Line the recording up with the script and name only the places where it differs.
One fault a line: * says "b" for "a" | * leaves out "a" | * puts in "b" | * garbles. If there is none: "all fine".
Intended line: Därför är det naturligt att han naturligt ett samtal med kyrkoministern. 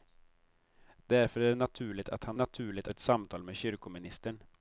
all fine